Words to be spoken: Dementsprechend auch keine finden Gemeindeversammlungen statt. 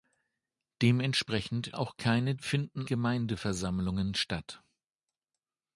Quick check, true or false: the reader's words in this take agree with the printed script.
true